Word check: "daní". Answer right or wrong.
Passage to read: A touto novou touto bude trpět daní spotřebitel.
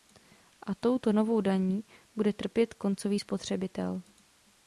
wrong